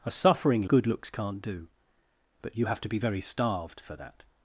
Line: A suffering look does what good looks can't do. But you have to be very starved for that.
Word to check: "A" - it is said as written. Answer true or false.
true